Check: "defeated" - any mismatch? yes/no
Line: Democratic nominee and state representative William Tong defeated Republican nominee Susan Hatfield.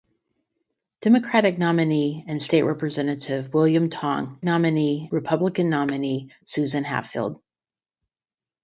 yes